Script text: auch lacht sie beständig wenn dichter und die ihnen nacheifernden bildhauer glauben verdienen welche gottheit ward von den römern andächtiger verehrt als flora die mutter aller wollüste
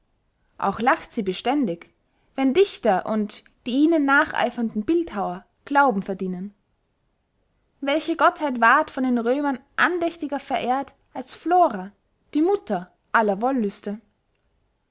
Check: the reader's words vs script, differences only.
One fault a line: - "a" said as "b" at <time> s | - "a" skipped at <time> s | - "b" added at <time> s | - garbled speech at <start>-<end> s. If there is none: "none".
none